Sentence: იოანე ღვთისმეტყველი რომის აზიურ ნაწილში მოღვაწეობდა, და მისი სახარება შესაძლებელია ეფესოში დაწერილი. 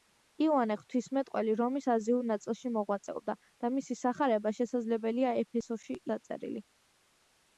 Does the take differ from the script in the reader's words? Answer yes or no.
no